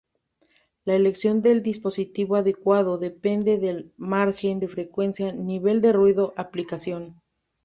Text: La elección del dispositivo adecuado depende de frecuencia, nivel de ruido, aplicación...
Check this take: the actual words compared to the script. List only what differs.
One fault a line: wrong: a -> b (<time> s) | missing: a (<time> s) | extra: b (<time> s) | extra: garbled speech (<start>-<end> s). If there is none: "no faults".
extra: del margen (3.6 s)